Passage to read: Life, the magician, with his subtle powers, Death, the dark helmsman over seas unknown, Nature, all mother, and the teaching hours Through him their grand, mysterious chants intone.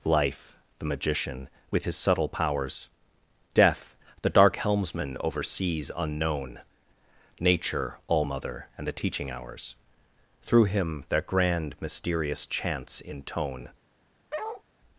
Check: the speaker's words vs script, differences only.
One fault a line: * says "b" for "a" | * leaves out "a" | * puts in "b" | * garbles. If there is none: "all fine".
all fine